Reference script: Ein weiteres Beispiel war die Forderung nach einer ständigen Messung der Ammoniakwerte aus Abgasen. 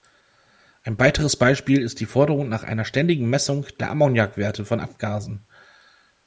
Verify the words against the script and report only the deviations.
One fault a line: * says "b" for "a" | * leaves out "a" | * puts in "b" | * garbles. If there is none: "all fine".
* says "ist" for "war"
* says "von" for "aus"